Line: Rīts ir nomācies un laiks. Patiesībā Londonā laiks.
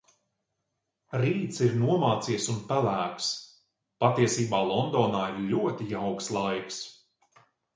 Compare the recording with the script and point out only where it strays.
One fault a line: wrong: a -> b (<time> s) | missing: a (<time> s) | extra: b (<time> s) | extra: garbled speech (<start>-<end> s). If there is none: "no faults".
wrong: laiks -> pelēks (2.7 s)
extra: ir ļoti jauks (5.3 s)